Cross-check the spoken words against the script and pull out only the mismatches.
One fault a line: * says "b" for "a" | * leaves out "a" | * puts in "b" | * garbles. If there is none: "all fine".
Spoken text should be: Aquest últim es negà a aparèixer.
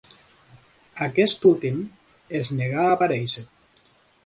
all fine